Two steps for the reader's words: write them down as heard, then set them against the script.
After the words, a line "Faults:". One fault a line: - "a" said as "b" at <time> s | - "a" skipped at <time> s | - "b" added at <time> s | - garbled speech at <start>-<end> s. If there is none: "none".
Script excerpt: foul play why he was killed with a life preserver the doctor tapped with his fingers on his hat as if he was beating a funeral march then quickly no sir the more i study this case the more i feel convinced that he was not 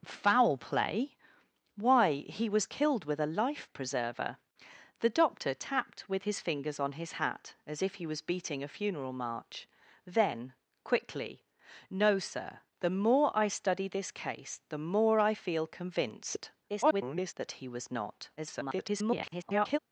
foul play why he was killed with a life preserver the doctor tapped with his fingers on his hat as if he was beating a funeral march then quickly no sir the more i study this case the more i feel convinced [garbled] that he was not [garbled]
Faults:
- garbled speech at 16.7-17.3 s
- garbled speech at 18.4-19.8 s